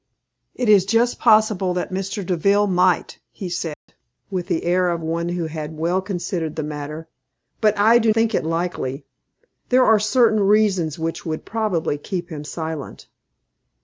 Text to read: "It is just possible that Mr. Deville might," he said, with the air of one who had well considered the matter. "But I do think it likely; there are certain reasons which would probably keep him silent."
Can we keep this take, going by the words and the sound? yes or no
no